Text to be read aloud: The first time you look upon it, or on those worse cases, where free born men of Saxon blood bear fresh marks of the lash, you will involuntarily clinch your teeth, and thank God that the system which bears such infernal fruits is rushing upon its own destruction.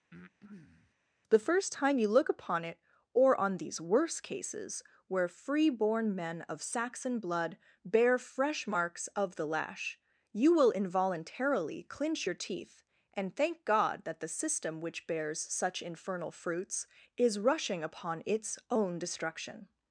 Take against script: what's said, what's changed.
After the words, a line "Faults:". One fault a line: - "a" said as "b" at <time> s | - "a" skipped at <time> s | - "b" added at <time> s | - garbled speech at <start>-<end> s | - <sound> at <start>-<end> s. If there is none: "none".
The first time you look upon it, or on these worse cases, where free born men of Saxon blood bear fresh marks of the lash, you will involuntarily clinch your teeth, and thank God that the system which bears such infernal fruits is rushing upon its own destruction.
Faults:
- breath at 0.1-0.9 s
- "those" said as "these" at 3.6 s